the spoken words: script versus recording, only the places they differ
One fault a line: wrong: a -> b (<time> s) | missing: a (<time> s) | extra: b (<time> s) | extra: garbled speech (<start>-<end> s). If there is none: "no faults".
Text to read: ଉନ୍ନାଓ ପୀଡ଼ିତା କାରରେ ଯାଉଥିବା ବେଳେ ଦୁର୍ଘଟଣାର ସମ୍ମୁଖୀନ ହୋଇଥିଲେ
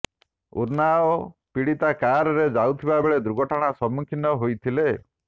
no faults